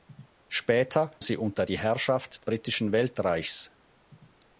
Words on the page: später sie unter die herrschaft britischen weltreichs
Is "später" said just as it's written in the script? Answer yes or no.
yes